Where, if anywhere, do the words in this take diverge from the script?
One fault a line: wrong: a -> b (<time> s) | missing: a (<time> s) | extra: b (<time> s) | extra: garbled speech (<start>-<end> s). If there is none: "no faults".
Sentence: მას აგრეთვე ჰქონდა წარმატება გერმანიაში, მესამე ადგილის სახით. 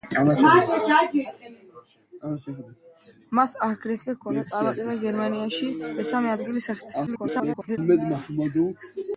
extra: garbled speech (7.1-7.8 s)